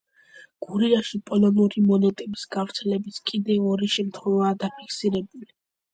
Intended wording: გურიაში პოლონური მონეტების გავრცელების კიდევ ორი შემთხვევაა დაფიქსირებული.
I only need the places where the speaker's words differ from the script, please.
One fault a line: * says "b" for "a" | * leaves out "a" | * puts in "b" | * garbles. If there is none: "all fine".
all fine